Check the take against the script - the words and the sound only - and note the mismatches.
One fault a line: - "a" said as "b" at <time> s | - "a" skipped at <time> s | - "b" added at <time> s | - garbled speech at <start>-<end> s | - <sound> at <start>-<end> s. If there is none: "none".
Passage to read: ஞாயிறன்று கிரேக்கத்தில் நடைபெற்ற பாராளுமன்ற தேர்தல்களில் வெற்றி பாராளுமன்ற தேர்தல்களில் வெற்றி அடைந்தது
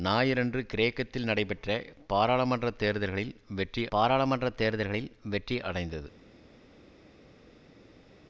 none